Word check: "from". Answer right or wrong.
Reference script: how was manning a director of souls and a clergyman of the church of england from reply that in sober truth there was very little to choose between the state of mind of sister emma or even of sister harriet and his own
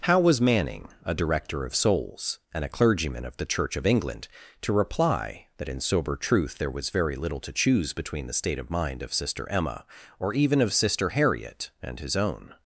wrong